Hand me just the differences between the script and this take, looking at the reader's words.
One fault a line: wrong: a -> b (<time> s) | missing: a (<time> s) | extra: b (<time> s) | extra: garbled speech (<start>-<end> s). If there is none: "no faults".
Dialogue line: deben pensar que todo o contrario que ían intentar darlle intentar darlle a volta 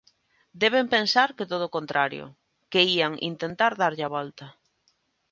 missing: intentar darlle (4.0 s)